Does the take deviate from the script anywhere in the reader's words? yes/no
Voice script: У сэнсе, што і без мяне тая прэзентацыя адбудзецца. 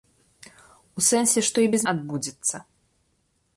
yes